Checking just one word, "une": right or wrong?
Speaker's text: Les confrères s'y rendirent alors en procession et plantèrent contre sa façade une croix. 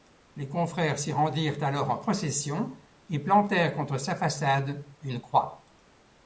right